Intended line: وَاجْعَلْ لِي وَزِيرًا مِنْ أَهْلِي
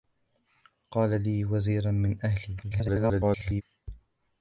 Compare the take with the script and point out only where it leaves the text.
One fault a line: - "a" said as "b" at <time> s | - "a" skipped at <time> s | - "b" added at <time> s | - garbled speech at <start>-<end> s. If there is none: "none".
- garbled speech at 2.6-3.6 s